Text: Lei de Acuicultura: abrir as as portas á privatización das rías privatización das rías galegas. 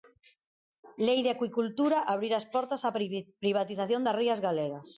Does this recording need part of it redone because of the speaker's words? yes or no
yes